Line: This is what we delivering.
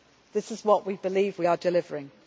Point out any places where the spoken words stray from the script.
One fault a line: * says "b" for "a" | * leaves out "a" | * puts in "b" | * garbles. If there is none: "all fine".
* puts in "believe we are"